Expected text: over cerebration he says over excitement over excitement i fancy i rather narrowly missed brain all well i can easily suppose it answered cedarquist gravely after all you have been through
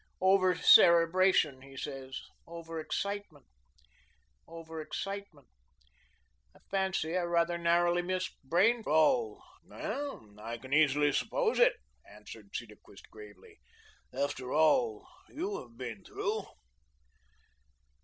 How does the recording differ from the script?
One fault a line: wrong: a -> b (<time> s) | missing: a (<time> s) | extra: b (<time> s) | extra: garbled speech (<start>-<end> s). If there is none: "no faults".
no faults